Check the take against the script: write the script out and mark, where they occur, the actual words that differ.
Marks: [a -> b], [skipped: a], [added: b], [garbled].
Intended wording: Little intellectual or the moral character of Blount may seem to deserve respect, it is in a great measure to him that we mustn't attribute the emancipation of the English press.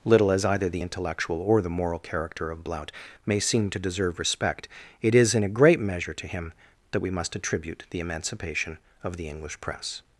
Little [added: as either the] intellectual or the moral character of Blount may seem to deserve respect, it is in a great measure to him that we [mustn't -> must] attribute the emancipation of the English press.